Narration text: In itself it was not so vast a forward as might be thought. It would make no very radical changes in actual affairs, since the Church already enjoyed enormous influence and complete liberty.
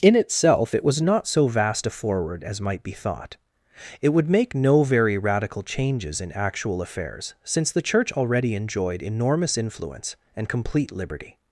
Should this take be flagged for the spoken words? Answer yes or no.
no